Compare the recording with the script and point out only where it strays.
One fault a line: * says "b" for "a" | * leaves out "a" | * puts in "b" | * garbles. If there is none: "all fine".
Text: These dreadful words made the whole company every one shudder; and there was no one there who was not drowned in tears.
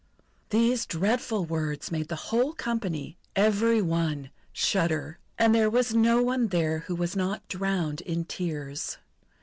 all fine